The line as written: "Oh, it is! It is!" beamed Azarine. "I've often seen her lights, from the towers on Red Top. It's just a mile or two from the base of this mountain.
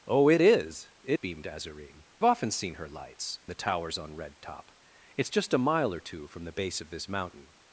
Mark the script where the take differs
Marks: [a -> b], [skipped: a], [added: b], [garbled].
"Oh, it is! It [skipped: is!"] beamed Azarine. [skipped: "I've] often seen her lights, [skipped: from] the towers on Red Top. It's just a mile or two from the base of this mountain.